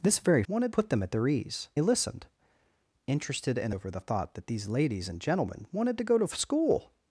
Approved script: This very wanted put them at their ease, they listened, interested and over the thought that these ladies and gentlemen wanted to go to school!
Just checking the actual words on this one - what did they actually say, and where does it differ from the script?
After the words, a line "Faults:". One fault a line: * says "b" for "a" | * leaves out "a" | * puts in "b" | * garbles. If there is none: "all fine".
This very wanted put them at their ease, they listened, interested and over the thought that these ladies and gentlemen wanted to go to school!
Faults:
all fine